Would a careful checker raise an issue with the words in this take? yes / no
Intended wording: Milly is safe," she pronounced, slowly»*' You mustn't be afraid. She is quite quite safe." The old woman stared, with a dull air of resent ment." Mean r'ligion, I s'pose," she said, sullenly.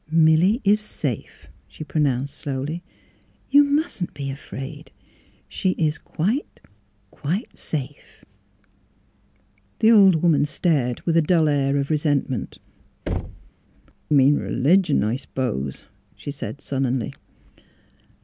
no